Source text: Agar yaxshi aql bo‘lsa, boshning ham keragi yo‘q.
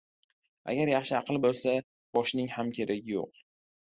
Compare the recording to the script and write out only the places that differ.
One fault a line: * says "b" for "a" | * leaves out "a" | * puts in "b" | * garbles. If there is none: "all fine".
all fine